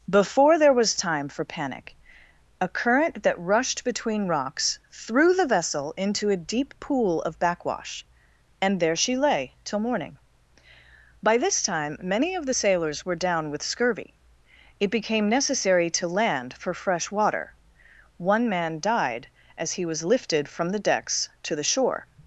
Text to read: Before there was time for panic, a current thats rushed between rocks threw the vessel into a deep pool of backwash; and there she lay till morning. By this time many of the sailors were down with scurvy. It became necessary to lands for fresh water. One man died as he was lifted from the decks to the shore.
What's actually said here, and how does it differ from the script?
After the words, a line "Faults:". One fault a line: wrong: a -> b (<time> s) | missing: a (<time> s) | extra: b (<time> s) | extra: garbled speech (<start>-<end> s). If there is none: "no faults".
Before there was time for panic, a current that rushed between rocks threw the vessel into a deep pool of backwash; and there she lay till morning. By this time many of the sailors were down with scurvy. It became necessary to land for fresh water. One man died as he was lifted from the decks to the shore.
Faults:
wrong: thats -> that (3.2 s)
wrong: lands -> land (16.1 s)